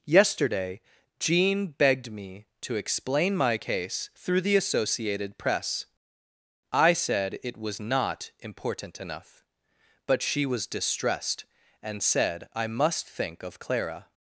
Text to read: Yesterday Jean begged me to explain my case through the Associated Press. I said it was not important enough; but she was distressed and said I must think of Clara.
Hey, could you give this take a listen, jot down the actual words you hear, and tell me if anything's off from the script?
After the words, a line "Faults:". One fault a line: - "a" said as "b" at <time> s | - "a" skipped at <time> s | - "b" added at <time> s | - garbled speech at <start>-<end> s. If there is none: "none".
Yesterday Jean begged me to explain my case through the Associated Press. I said it was not important enough; but she was distressed and said I must think of Clara.
Faults:
none